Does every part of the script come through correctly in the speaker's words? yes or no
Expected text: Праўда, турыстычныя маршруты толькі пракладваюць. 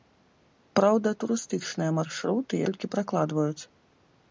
yes